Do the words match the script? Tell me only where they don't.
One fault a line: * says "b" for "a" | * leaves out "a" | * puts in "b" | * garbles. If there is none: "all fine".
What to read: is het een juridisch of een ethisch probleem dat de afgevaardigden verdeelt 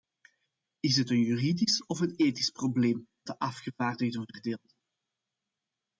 * leaves out "dat"